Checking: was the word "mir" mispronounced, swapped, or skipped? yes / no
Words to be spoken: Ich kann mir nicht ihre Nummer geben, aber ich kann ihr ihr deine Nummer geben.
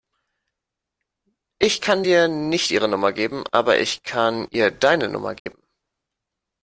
yes